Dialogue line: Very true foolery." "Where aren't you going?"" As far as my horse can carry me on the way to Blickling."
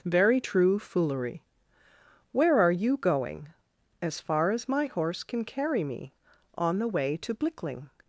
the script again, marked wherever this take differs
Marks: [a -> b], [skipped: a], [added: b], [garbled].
Very true foolery." "Where [aren't -> are] you going?"" As far as my horse can carry me on the way to Blickling."